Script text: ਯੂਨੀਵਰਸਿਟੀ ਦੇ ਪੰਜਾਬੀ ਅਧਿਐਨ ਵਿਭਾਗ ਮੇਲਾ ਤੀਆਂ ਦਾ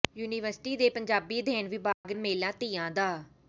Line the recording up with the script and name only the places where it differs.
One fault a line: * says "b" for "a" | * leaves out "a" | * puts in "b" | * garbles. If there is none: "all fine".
all fine